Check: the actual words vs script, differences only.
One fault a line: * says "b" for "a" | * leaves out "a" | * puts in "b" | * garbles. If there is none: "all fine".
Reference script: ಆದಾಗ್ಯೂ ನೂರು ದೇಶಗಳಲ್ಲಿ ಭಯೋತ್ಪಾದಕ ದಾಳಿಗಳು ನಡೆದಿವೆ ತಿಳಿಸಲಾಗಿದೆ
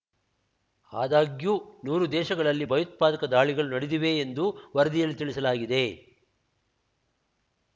* puts in "ಎಂದು ವರದಿಯಲ್ಲಿ"